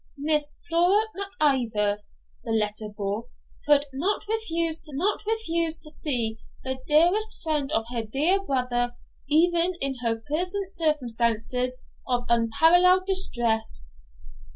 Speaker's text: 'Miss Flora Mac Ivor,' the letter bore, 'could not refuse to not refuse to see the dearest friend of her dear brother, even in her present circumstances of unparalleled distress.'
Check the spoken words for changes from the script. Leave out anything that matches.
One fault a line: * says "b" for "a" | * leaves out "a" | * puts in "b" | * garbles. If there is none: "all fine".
all fine